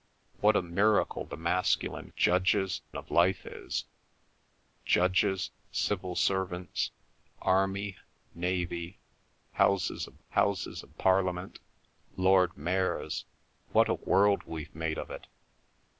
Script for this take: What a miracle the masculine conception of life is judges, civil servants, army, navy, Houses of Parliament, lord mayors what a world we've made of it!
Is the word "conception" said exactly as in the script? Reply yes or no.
no